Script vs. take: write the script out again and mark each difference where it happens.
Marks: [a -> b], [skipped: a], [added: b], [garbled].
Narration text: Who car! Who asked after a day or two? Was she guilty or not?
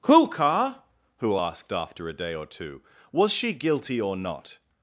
Who car! Who asked after a day or two? Was she guilty or not?